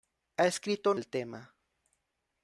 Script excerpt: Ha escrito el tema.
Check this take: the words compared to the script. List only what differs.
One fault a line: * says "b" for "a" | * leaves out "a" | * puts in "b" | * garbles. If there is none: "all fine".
all fine